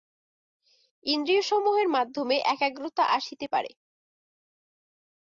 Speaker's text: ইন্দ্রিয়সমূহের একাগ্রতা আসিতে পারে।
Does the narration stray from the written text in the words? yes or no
yes